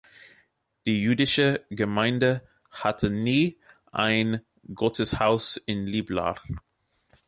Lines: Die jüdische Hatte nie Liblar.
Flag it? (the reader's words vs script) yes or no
yes